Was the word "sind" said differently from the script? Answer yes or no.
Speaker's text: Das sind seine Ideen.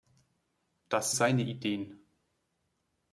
yes